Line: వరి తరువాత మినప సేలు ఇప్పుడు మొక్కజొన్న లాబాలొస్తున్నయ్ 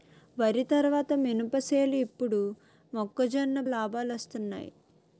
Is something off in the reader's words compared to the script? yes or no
no